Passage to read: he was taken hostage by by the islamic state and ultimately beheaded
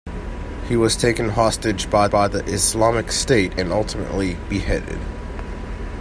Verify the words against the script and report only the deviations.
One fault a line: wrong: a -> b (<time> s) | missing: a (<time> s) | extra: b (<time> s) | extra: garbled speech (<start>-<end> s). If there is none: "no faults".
no faults